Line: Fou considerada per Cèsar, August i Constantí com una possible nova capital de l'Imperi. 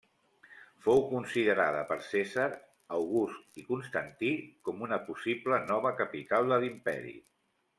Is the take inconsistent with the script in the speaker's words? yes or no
no